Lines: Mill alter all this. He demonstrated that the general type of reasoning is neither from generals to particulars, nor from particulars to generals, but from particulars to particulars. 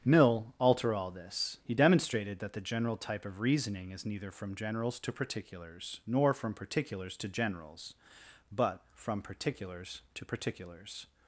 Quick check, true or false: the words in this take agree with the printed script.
true